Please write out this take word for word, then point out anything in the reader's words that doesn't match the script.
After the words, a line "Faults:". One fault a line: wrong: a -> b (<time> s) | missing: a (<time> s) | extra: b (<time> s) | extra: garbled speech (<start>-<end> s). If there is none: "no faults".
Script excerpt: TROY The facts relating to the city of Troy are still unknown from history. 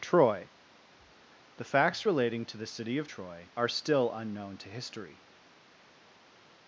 TROY The facts relating to the city of Troy are still unknown to history.
Faults:
wrong: from -> to (4.6 s)